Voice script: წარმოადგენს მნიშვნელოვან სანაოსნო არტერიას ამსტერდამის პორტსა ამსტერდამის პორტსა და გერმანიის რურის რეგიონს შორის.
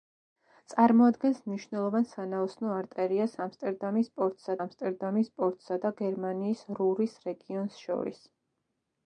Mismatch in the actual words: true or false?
false